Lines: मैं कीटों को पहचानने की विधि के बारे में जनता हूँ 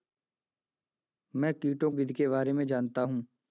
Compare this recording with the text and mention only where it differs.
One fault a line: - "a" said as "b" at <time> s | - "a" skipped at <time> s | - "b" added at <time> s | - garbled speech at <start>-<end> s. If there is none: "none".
- "को पहचानने की" skipped at 1.9 s